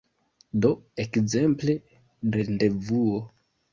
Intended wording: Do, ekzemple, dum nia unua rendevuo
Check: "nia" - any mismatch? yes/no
yes